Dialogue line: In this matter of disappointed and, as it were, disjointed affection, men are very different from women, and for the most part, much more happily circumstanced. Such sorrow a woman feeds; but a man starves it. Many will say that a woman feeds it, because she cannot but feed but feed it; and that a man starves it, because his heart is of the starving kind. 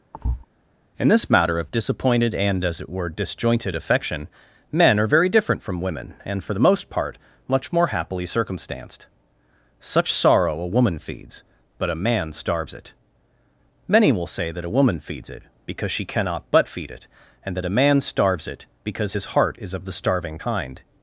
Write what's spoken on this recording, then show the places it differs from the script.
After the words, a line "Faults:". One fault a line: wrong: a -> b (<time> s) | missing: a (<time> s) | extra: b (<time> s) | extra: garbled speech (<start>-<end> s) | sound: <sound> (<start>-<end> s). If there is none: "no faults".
In this matter of disappointed and, as it were, disjointed affection, men are very different from women, and for the most part, much more happily circumstanced. Such sorrow a woman feeds; but a man starves it. Many will say that a woman feeds it, because she cannot but feed it; and that a man starves it, because his heart is of the starving kind.
Faults:
sound: thud (0.1-0.5 s)
missing: but feed (16.9 s)